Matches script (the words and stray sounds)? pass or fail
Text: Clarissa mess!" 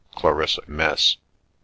pass